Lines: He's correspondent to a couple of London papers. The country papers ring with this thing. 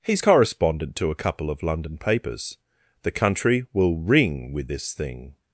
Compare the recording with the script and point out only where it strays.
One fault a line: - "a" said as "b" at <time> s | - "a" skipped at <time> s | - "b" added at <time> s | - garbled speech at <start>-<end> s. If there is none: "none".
- "papers" said as "will" at 3.7 s